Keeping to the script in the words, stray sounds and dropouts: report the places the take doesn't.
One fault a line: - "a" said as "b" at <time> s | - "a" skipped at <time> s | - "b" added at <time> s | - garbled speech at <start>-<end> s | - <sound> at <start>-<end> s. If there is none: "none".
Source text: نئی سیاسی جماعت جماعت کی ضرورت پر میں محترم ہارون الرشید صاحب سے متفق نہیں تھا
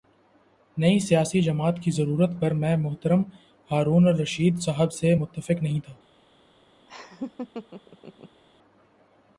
- "جماعت" skipped at 1.8 s
- laugh at 6.9-8.4 s